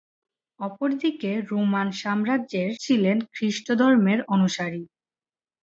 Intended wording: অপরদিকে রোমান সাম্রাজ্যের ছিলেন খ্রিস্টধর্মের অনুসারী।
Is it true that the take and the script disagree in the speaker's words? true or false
false